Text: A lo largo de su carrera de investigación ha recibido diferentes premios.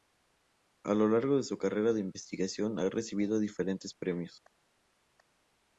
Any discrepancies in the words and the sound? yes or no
no